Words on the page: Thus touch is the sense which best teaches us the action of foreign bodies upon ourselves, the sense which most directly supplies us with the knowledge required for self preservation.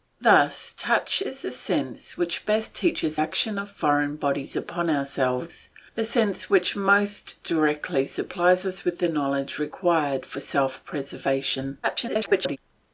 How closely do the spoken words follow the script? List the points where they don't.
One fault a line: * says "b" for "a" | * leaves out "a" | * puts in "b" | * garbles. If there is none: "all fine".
* leaves out "us the"
* garbles